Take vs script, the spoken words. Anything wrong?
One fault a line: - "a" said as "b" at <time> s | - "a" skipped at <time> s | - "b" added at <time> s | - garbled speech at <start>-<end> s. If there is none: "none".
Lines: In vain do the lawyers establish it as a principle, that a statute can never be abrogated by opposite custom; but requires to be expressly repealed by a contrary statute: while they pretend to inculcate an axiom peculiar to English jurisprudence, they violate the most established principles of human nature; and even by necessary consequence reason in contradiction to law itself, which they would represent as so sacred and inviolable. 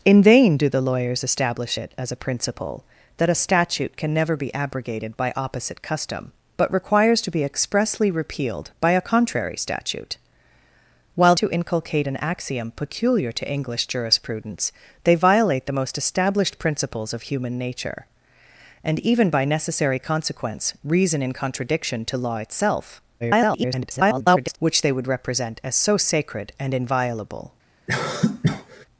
- "they pretend" skipped at 11.3 s
- garbled speech at 23.2-24.6 s